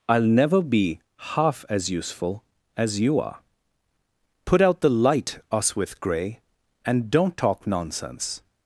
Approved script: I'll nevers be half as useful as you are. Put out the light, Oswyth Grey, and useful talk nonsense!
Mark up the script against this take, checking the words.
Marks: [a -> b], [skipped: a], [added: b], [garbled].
I'll [nevers -> never] be half as useful as you are. Put out the light, Oswyth Grey, and [useful -> don't] talk nonsense!